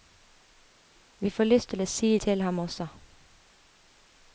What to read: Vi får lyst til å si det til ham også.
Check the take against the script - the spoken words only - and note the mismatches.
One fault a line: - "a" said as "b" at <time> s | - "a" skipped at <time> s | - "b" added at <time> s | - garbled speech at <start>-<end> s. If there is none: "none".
- "det" skipped at 2.2 s